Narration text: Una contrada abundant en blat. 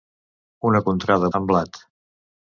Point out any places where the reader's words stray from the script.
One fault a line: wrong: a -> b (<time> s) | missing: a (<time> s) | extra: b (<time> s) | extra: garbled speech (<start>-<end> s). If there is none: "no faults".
missing: abundant (1.3 s)